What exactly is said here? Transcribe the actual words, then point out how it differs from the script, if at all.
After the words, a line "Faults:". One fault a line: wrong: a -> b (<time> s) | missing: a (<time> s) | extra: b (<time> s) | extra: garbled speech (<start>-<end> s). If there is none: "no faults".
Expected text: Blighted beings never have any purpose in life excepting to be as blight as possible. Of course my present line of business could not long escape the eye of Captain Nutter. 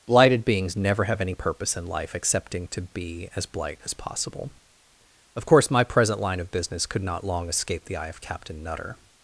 Blighted beings never have any purpose in life excepting to be as blight as possible. Of course my present line of business could not long escape the eye of Captain Nutter.
Faults:
no faults